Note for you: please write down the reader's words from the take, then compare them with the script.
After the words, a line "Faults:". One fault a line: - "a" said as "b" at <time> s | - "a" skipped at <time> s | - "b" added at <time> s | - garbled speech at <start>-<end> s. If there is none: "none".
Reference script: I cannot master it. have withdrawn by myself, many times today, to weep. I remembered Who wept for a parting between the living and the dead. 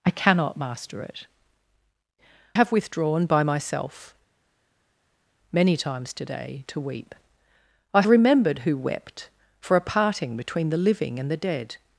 I cannot master it. have withdrawn by myself, many times today, to weep. I remembered Who wept for a parting between the living and the dead.
Faults:
none